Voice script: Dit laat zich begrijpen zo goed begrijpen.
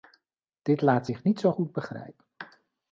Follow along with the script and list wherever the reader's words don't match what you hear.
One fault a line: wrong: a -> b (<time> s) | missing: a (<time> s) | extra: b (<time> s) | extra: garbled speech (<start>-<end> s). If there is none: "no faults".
wrong: begrijpen -> niet (1.2 s)